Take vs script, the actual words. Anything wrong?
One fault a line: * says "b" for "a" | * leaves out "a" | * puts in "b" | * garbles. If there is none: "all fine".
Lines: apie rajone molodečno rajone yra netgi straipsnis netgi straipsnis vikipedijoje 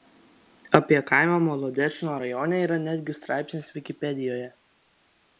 * says "kaimą" for "rajone"
* leaves out "netgi straipsnis"